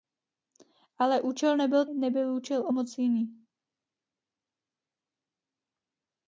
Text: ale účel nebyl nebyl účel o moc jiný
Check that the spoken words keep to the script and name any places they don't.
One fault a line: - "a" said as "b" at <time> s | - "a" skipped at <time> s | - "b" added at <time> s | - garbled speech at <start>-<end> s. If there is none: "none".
none